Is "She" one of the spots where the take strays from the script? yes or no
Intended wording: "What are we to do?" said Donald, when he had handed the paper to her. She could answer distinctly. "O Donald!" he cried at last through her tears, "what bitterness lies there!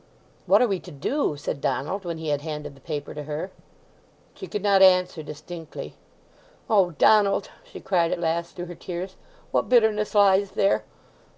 no